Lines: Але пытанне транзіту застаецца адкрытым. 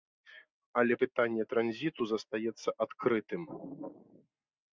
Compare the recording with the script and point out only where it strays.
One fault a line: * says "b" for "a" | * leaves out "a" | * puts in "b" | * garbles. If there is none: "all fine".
all fine